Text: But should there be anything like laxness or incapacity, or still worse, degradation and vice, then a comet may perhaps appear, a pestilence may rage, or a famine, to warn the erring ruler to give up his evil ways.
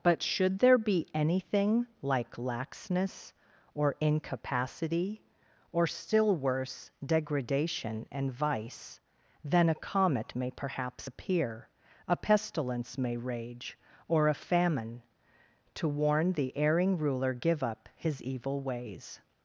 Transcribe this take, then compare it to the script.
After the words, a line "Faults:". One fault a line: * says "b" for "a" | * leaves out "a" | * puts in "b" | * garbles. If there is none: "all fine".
But should there be anything like laxness or incapacity, or still worse, degradation and vice, then a comet may perhaps appear, a pestilence may rage, or a famine, to warn the erring ruler give up his evil ways.
Faults:
* leaves out "to"